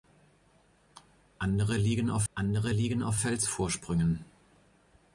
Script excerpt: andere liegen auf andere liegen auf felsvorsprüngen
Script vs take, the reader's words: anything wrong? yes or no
no